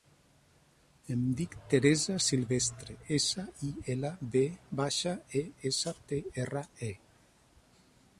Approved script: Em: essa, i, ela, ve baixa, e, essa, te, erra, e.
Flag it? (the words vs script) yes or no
yes